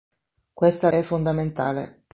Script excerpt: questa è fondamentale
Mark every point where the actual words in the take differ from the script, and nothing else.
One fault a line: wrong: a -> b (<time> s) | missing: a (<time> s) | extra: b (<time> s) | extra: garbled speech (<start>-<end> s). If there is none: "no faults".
no faults